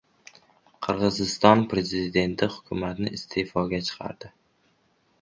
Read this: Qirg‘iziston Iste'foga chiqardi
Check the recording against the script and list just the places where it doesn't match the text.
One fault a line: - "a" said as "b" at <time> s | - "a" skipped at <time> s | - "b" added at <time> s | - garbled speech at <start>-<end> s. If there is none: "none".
- "Prezidenti hukumatni" added at 1.8 s